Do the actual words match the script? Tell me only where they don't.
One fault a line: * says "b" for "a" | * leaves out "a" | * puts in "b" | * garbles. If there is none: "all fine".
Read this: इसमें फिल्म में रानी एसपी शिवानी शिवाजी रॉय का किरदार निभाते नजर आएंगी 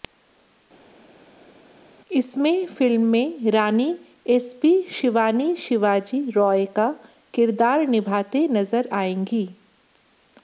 all fine